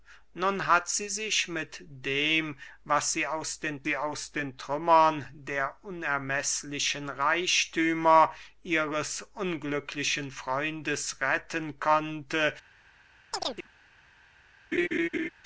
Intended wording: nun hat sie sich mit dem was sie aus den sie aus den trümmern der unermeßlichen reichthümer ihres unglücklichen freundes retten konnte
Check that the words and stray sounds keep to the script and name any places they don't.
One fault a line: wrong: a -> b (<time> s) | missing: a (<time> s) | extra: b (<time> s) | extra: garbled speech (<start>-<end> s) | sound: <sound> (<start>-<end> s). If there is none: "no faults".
sound: chirp (13.3-13.7 s)
sound: laugh (14.7-15.3 s)